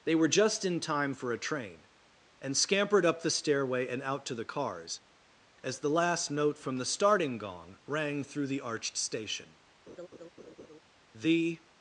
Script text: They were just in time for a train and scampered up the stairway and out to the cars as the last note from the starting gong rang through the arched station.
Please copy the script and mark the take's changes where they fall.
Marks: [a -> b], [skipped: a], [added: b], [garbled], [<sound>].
They were just in time for a train and scampered up the stairway and out to the cars as the last note from the starting gong rang through the arched station. [laugh] [added: The]